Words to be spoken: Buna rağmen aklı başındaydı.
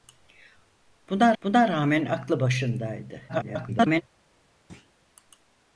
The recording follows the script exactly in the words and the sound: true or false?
false